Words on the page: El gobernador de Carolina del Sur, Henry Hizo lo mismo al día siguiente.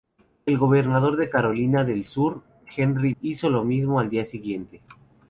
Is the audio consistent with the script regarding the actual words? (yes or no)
yes